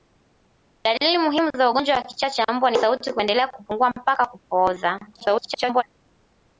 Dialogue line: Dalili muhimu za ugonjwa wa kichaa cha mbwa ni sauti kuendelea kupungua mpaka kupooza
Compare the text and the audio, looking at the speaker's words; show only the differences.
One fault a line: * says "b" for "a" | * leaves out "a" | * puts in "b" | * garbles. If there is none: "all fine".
* garbles